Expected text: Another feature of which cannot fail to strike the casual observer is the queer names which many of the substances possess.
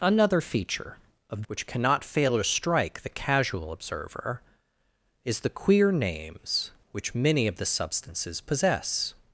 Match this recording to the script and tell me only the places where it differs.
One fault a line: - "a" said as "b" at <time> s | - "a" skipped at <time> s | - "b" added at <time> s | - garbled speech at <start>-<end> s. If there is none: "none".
none